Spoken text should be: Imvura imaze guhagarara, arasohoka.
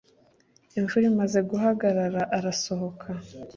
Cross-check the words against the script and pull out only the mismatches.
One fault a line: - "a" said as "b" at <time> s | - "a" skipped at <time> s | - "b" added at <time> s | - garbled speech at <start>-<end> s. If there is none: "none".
none